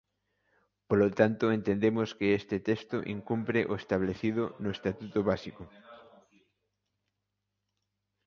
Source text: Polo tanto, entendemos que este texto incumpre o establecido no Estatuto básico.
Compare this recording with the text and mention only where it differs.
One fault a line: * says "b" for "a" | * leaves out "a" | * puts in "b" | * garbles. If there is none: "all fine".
all fine